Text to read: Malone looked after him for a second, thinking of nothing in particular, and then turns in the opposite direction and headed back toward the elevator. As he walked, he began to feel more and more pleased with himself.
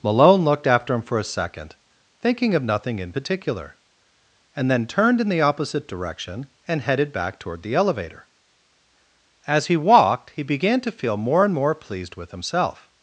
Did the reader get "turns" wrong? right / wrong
wrong